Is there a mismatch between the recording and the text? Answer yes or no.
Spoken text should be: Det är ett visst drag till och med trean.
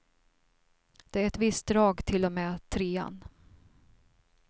no